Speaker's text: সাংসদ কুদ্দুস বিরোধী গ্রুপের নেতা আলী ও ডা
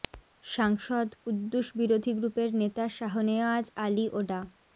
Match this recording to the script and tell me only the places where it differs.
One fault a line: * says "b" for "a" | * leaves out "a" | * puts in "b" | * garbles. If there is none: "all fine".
* puts in "শাহনেওয়াজ"